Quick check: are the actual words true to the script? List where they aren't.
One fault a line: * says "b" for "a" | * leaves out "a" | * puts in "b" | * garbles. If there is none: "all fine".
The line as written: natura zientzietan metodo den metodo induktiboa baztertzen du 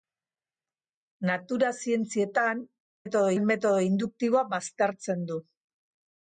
all fine